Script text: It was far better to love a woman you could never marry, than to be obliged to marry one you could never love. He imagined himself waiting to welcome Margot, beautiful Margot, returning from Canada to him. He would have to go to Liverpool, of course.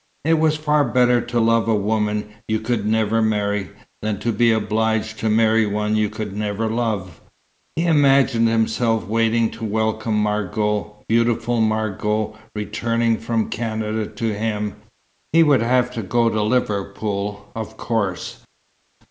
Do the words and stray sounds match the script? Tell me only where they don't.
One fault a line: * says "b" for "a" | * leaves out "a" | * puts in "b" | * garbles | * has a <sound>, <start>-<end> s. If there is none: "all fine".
all fine